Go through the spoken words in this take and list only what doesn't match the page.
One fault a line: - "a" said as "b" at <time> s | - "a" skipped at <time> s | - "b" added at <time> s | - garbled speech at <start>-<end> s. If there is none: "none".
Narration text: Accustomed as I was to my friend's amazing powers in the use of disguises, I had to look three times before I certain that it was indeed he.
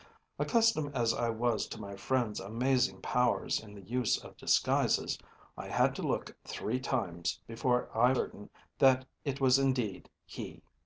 none